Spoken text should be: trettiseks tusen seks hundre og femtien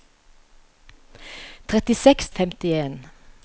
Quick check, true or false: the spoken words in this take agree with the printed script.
false